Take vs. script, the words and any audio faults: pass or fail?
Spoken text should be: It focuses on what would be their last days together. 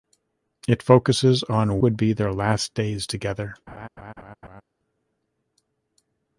fail